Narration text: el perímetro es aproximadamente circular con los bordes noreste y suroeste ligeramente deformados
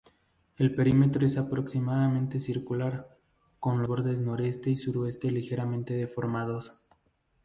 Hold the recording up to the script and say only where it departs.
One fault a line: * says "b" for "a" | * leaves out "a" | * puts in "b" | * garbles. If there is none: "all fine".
* leaves out "los"